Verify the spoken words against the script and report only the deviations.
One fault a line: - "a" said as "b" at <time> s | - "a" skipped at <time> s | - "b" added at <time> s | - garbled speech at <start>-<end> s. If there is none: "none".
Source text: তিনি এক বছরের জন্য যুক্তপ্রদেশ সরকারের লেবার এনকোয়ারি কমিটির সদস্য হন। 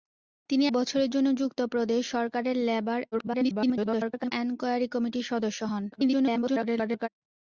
- "এক" skipped at 0.7 s
- garbled speech at 3.1-4.3 s
- garbled speech at 5.9-7.1 s